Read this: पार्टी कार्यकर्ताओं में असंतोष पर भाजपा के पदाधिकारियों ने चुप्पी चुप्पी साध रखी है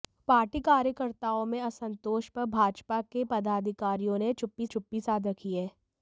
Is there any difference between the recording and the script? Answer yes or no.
no